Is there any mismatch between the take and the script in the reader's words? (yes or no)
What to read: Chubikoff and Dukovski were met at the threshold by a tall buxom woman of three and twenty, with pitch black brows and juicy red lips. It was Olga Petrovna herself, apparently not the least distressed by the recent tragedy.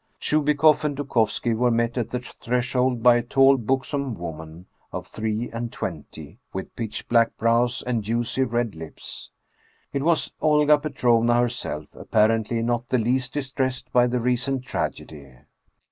no